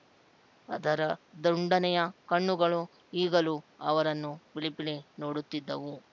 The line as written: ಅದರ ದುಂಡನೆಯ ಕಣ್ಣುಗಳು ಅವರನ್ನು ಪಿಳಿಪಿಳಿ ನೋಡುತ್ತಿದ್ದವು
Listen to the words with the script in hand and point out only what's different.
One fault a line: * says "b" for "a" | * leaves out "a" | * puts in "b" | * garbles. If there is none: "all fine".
* puts in "ಈಗಲೂ"